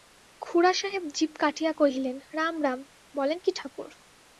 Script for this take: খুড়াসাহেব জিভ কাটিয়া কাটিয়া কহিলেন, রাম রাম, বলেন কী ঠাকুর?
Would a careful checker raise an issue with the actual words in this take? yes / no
yes